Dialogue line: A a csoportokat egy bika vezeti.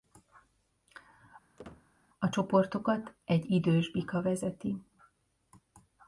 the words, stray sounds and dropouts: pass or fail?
fail